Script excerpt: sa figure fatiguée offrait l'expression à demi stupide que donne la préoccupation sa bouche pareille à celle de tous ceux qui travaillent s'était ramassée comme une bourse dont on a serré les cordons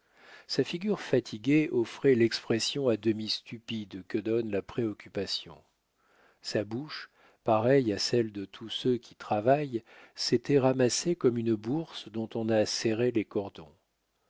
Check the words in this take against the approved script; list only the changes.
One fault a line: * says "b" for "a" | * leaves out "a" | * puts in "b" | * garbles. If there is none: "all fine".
all fine